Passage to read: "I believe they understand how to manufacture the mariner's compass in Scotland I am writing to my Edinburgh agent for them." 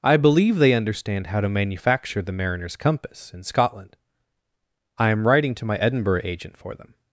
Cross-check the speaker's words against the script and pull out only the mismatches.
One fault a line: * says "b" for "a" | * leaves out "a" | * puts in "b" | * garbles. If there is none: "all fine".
all fine